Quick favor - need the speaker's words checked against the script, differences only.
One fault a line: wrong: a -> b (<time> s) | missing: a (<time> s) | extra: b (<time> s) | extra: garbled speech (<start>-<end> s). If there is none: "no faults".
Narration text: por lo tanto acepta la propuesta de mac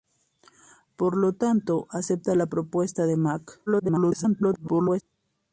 extra: garbled speech (3.7-5.0 s)